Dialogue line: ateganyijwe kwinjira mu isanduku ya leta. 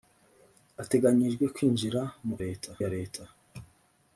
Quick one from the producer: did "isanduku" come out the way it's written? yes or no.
no